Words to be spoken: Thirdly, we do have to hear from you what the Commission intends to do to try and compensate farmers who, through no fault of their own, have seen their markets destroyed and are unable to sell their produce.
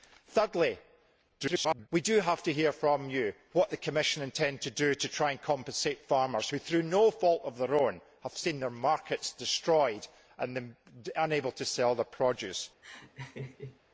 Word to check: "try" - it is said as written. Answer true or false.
true